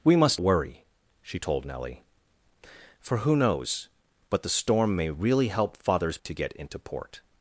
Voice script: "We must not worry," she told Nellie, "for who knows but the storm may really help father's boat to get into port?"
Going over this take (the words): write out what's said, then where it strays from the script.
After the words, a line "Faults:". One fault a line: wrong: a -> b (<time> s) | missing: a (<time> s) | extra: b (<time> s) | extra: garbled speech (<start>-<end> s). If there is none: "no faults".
"We must worry," she told Nellie, "for who knows but the storm may really help father's to get into port?"
Faults:
missing: not (0.4 s)
missing: boat (6.2 s)